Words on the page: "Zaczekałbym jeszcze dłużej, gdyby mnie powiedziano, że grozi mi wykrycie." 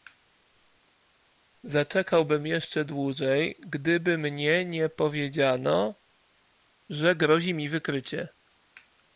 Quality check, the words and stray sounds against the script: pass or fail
fail